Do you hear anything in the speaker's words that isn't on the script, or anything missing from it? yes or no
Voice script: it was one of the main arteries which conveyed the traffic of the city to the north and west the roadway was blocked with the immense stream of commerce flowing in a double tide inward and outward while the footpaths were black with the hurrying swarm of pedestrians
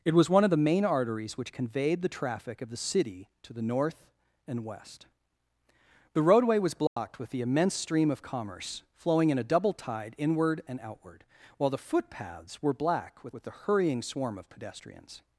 yes